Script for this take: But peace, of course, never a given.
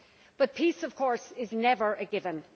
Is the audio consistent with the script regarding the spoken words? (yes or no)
no